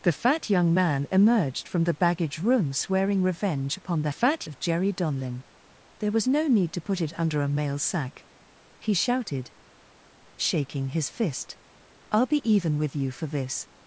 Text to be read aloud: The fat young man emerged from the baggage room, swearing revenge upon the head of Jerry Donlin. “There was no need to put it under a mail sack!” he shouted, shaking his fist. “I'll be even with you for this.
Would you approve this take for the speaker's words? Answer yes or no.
no